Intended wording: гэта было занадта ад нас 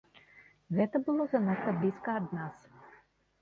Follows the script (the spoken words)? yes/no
no